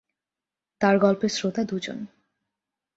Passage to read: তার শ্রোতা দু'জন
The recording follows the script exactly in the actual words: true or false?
false